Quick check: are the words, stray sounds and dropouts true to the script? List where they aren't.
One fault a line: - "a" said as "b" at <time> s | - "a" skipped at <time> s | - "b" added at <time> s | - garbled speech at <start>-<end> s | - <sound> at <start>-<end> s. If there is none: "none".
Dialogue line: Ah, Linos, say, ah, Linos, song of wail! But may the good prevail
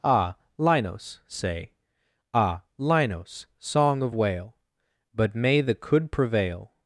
- "good" said as "could" at 5.7 s